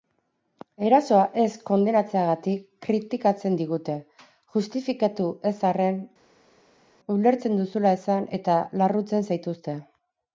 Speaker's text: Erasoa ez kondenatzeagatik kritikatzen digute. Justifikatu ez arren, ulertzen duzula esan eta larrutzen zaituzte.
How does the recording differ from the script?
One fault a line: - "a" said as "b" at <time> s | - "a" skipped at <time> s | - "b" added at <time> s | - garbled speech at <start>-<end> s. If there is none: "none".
none